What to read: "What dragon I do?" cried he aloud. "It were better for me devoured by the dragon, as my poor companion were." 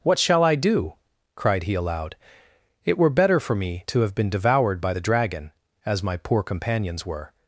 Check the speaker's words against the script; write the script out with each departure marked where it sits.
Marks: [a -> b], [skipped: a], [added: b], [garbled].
"What [dragon -> shall] I do?" cried he aloud. "It were better for me [added: to have been] devoured by the dragon, as my poor [companion -> companions] were."